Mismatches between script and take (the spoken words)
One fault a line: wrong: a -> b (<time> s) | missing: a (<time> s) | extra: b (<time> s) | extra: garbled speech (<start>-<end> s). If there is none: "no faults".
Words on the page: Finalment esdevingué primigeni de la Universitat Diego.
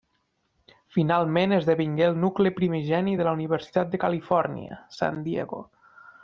extra: el nucli (2.1 s)
extra: de Califòrnia San (3.9 s)